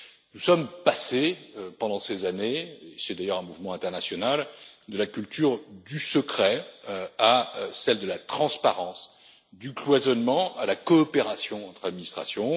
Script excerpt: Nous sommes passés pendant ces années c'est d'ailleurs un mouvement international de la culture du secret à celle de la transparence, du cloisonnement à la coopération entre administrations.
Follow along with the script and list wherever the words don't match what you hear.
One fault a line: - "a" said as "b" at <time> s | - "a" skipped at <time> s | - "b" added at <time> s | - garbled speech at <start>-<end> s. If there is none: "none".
none